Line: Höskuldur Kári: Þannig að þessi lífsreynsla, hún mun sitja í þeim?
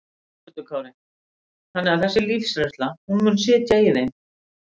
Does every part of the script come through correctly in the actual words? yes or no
yes